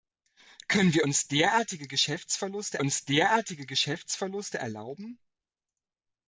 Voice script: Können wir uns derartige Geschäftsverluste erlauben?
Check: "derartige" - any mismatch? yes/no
no